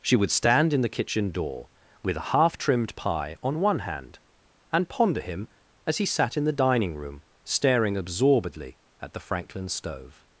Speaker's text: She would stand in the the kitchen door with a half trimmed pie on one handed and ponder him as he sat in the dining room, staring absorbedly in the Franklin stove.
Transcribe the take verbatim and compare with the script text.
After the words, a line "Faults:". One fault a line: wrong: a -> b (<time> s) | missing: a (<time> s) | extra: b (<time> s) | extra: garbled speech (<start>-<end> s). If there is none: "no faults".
She would stand in the kitchen door with a half trimmed pie on one hand and ponder him as he sat in the dining room, staring absorbedly at the Franklin stove.
Faults:
missing: the (0.9 s)
wrong: handed -> hand (3.8 s)
wrong: in -> at (9.0 s)